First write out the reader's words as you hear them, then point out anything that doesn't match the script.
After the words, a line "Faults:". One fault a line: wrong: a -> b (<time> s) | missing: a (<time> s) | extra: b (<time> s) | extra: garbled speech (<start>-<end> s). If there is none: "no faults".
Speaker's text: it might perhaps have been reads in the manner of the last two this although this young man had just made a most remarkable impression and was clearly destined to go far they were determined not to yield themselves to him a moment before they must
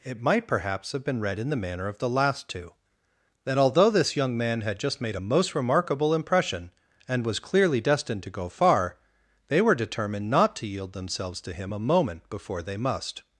it might perhaps have been read in the manner of the last two that although this young man had just made a most remarkable impression and was clearly destined to go far they were determined not to yield themselves to him a moment before they must
Faults:
wrong: reads -> read (1.2 s)
wrong: this -> that (3.5 s)